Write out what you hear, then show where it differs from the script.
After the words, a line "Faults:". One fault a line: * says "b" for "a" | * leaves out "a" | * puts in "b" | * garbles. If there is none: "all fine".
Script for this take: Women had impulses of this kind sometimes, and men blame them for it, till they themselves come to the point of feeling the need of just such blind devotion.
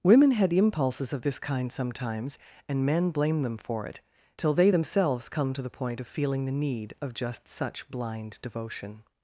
Women had impulses of this kind sometimes, and men blame them for it, till they themselves come to the point of feeling the need of just such blind devotion.
Faults:
all fine